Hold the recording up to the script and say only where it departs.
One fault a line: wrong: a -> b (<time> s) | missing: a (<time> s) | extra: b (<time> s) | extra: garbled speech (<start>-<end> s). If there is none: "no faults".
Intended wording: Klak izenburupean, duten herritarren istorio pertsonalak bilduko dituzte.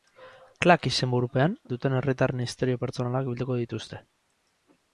no faults